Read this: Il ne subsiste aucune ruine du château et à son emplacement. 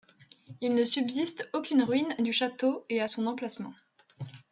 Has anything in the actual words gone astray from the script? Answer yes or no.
no